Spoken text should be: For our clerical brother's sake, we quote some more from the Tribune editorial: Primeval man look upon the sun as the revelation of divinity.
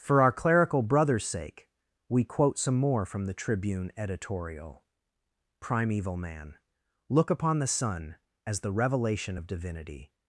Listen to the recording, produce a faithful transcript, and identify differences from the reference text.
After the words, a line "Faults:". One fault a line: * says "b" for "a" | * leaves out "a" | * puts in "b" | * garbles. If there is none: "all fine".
For our clerical brother's sake, we quote some more from the Tribune editorial: Primeval man look upon the sun as the revelation of divinity.
Faults:
all fine